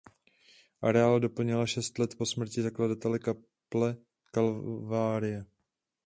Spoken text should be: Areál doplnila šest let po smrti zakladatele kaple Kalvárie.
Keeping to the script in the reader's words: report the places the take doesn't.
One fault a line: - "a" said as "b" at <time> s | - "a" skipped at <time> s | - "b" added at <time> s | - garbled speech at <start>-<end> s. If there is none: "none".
none